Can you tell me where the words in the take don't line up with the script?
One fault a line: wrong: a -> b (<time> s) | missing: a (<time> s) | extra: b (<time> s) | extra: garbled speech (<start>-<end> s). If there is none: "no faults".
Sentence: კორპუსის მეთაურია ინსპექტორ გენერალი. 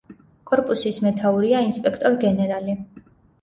no faults